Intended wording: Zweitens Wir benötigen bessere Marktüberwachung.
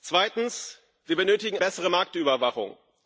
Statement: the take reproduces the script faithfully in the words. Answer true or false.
true